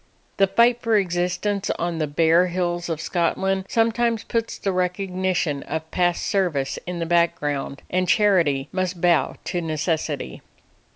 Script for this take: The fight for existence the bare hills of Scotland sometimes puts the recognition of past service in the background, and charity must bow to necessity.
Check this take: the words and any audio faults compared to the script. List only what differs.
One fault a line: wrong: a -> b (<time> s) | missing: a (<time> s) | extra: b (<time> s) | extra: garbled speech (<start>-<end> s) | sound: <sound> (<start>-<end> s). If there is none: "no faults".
extra: on (1.8 s)